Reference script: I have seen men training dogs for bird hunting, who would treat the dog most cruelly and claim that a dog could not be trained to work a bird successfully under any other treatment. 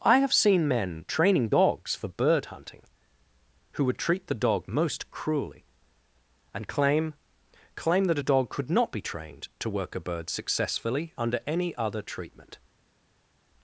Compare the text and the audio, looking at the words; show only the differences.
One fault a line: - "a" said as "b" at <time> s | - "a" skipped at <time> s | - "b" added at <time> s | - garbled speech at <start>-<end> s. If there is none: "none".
- "claim" added at 7.7 s